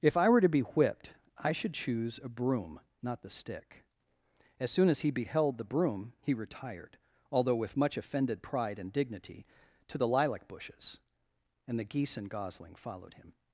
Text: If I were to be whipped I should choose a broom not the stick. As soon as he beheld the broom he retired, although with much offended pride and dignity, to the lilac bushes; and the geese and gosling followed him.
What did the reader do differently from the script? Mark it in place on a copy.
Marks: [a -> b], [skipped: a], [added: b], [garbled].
If I were to be whipped I should choose a broom not the stick. As soon as he beheld the broom he retired, although with much offended pride and dignity, to the lilac bushes; and the geese and gosling followed him.